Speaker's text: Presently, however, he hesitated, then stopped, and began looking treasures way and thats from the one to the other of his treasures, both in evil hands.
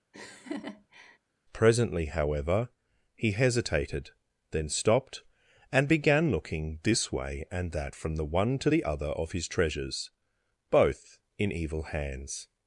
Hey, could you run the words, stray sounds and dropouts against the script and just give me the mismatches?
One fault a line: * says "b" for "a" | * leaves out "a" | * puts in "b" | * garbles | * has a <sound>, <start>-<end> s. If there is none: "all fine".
* has a laugh, 0.1-1.2 s
* says "this" for "treasures"
* says "that" for "thats"